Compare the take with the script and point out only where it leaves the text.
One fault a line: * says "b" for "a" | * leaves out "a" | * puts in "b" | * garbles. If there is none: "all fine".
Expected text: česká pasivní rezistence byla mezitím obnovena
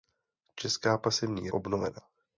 * leaves out "rezistence byla mezitím"